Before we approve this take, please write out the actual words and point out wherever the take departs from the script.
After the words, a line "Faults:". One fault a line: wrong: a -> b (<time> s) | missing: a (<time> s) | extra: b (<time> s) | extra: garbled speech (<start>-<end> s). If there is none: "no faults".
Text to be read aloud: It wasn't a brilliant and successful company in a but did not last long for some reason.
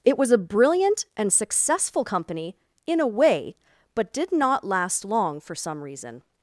It was a brilliant and successful company in a way, but did not last long for some reason.
Faults:
wrong: wasn't -> was (0.2 s)
extra: way (3.1 s)